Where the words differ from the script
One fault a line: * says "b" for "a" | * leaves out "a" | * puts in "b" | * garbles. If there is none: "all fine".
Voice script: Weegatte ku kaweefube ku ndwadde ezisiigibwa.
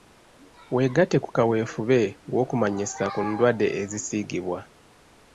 * puts in "w'okumanyisa"